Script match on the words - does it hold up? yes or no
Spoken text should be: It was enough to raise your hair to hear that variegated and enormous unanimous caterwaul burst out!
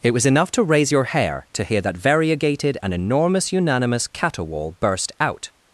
yes